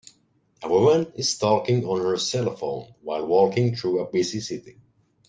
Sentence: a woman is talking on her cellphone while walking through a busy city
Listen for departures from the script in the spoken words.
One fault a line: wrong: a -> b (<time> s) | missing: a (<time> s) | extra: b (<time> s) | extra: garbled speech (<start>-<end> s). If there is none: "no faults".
no faults